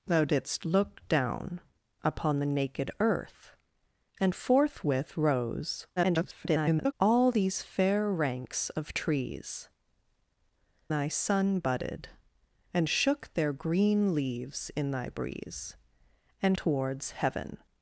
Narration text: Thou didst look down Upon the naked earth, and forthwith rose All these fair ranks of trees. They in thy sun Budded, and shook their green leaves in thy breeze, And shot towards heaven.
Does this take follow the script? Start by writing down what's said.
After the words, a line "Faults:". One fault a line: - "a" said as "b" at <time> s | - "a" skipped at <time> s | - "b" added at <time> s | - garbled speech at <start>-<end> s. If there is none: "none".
Thou didst look down Upon the naked earth, and forthwith rose [garbled] All these fair ranks of trees. Thy sun Budded, and shook their green leaves in thy breeze, And towards heaven.
Faults:
- garbled speech at 6.0-6.9 s
- "They in" skipped at 9.7 s
- "shot" skipped at 16.6 s